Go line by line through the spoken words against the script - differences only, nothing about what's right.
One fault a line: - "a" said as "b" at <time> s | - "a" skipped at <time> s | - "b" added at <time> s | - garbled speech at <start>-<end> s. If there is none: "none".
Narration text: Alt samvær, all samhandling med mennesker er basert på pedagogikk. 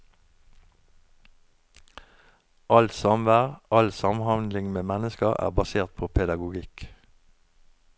none